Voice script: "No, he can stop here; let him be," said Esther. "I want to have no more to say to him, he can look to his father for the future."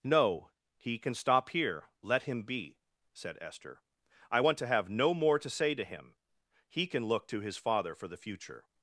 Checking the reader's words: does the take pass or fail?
pass